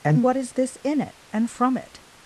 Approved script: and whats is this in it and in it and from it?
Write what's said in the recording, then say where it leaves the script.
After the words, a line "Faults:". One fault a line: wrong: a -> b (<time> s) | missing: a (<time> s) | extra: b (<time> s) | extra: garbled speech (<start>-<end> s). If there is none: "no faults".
and what is this in it and from it?
Faults:
wrong: whats -> what (0.2 s)
missing: in it and (1.5 s)